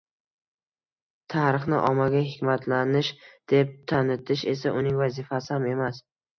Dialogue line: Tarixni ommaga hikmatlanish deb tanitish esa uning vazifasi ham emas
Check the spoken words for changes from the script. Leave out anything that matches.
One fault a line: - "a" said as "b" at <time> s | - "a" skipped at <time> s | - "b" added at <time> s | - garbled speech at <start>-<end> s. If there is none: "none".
none